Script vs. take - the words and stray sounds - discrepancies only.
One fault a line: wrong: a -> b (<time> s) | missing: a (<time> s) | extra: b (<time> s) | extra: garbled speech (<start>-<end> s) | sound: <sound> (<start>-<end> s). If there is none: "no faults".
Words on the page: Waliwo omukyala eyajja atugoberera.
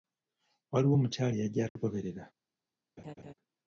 sound: dropout (1.7-1.8 s)
sound: laugh (3.0-3.3 s)